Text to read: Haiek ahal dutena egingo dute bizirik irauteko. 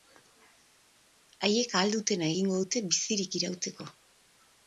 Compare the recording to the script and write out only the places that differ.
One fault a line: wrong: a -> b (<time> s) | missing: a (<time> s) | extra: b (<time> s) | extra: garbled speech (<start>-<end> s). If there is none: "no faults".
no faults